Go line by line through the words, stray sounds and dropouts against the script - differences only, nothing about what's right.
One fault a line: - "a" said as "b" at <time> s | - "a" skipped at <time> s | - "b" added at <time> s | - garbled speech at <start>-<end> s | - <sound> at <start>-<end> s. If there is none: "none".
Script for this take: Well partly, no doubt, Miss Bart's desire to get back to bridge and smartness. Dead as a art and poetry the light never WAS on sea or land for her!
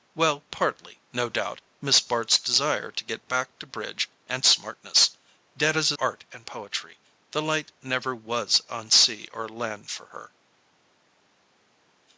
none